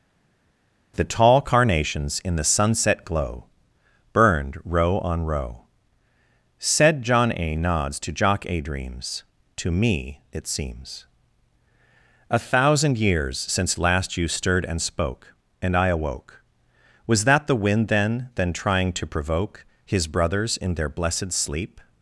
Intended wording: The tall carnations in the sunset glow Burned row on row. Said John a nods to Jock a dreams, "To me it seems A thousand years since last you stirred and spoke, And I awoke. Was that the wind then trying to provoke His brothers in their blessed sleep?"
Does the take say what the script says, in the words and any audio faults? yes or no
no